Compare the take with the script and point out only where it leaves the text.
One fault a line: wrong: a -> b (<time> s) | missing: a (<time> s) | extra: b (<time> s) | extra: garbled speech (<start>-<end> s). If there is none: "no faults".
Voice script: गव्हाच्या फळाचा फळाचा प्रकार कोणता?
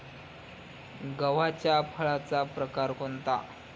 missing: फळाचा (2.4 s)